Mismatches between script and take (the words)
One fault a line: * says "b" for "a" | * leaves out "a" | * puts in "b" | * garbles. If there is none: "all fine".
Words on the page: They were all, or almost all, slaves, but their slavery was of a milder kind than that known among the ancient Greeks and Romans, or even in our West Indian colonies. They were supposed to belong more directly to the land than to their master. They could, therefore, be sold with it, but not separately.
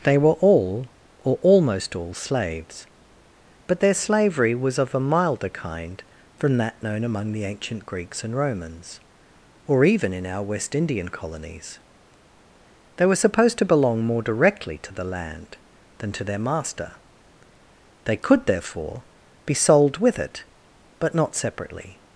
* says "from" for "than"